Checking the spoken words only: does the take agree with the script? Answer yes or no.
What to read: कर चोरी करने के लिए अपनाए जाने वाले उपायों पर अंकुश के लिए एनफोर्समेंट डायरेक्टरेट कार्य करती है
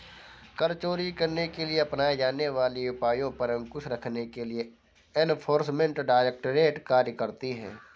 no